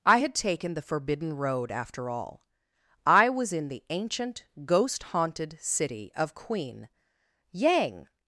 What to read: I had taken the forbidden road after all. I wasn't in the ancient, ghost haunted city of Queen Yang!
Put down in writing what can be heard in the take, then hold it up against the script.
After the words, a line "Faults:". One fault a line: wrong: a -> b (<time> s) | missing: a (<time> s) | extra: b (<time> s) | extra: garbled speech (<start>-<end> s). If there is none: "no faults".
I had taken the forbidden road after all. I was in the ancient, ghost haunted city of Queen Yang!
Faults:
wrong: wasn't -> was (3.3 s)